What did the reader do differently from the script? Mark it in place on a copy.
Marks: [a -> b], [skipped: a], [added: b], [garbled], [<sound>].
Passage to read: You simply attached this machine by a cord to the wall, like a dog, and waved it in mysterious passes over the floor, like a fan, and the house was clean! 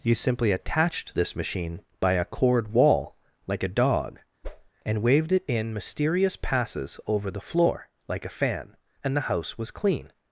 You simply attached this machine by a cord [skipped: to the] wall, like a dog, [whoosh] and waved it in mysterious passes over the floor, like a fan, and the house was clean!